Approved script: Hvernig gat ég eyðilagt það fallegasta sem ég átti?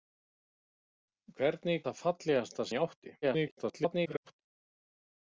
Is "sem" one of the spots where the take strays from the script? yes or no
yes